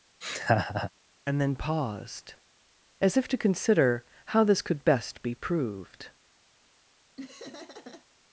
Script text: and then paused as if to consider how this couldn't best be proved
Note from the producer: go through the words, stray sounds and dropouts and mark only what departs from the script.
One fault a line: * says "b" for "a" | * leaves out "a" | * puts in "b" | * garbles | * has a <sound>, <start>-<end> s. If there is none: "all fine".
* has a laugh, 0.2-0.9 s
* says "could" for "couldn't"
* has a laugh, 7.2-8.1 s